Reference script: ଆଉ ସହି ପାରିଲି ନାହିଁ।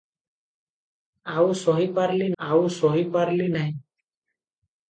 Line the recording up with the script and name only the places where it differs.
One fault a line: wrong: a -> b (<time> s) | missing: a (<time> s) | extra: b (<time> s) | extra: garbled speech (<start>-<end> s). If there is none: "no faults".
extra: ଆଉ ସହି ପାରିଲି (2.4 s)